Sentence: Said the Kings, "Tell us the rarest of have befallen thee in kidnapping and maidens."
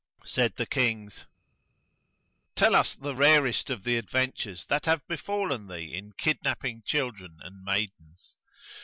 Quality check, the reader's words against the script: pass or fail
fail